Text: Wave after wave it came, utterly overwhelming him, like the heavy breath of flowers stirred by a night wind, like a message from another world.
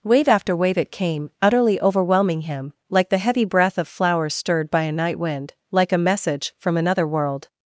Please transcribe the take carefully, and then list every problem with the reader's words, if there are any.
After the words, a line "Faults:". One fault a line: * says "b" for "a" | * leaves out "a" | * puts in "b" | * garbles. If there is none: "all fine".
Wave after wave it came, utterly overwhelming him, like the heavy breath of flowers stirred by a night wind, like a message from another world.
Faults:
all fine